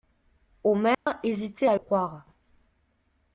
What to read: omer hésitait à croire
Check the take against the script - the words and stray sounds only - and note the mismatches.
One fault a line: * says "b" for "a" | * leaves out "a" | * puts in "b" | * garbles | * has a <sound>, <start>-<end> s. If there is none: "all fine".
* has a dropout, 0.9-1.1 s